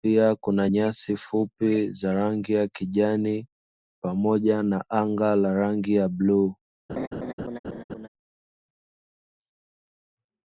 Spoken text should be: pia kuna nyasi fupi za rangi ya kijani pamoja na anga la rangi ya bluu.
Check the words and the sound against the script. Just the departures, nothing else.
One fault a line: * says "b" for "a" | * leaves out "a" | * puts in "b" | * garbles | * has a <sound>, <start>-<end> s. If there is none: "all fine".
* has a laugh, 6.9-8.1 s